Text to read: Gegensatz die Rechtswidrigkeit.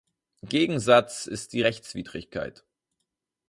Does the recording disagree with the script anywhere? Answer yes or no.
yes